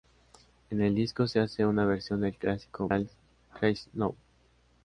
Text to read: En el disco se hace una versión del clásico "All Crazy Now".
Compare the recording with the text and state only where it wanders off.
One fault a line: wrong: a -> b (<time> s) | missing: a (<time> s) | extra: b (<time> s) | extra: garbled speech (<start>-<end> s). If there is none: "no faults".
no faults